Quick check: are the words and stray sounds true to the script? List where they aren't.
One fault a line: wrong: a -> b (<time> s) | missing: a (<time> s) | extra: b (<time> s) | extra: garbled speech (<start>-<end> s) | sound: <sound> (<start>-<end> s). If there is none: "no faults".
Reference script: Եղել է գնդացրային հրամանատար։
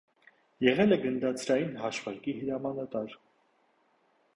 extra: հաշվարկի (1.8 s)